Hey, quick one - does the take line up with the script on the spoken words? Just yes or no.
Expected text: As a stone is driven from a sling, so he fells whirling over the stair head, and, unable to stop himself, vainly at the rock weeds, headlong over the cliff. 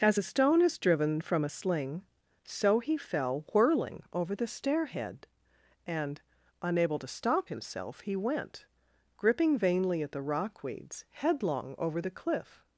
no